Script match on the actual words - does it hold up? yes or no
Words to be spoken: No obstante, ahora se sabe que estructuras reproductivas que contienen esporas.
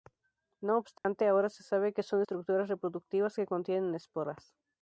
no